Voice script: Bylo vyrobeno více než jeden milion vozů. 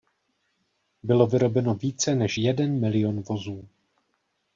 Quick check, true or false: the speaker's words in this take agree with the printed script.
true